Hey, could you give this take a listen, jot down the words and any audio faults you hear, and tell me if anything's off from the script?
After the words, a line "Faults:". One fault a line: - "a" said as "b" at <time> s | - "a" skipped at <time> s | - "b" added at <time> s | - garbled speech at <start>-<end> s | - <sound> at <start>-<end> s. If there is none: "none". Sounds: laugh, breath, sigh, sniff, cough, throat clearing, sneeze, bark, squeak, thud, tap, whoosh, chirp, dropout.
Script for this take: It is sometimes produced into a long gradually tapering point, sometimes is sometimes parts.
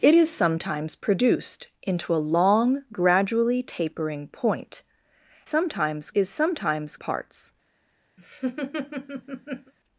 It is sometimes produced into a long gradually tapering point, sometimes is sometimes parts.
Faults:
- laugh at 8.2-9.7 s